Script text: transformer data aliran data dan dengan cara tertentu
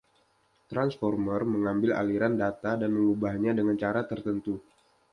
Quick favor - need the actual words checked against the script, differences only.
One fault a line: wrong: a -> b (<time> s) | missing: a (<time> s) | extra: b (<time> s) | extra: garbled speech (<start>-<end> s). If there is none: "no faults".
wrong: data -> mengambil (1.4 s)
extra: mengubahnya (2.9 s)